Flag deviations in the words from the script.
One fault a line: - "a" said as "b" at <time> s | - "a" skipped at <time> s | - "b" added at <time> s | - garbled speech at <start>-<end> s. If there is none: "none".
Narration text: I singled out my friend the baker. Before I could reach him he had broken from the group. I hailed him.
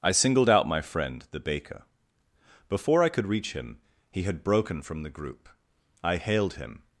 none